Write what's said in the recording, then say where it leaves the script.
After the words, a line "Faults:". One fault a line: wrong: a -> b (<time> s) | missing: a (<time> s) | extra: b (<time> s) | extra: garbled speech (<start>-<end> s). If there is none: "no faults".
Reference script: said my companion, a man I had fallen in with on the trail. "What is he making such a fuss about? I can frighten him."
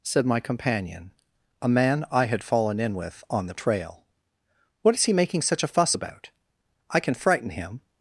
said my companion, a man I had fallen in with on the trail. "What is he making such a fuss about? I can frighten him."
Faults:
no faults